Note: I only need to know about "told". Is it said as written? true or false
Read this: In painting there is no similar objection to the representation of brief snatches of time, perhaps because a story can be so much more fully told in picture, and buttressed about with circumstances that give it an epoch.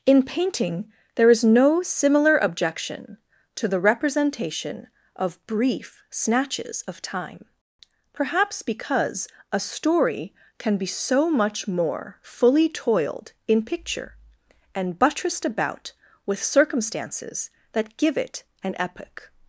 false